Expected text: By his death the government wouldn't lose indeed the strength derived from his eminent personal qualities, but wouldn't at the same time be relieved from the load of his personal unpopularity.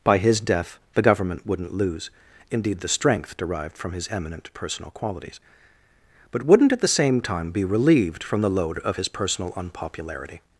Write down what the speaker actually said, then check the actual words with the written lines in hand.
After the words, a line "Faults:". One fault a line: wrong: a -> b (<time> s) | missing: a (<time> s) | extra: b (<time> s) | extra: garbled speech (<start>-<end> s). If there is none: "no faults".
By his death the government wouldn't lose indeed the strength derived from his eminent personal qualities, but wouldn't at the same time be relieved from the load of his personal unpopularity.
Faults:
no faults